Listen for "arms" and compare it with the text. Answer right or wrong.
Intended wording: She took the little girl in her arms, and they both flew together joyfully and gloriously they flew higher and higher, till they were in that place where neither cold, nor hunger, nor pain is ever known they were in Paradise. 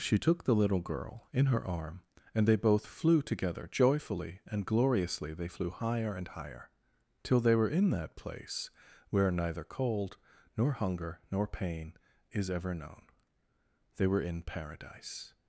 wrong